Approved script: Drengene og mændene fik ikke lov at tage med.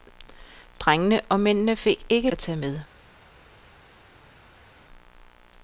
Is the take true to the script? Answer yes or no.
no